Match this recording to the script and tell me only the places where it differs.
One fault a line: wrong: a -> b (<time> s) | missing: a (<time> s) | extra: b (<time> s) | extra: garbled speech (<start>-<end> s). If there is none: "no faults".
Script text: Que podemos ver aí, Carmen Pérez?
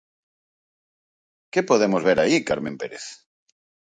no faults